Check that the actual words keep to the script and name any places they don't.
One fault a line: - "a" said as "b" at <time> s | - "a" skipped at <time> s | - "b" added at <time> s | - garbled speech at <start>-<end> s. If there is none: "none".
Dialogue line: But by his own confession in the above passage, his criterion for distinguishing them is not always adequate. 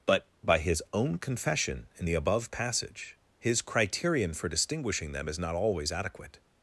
none